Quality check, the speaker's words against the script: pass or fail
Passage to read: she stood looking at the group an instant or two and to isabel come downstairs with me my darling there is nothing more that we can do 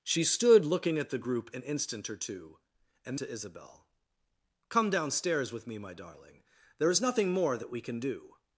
pass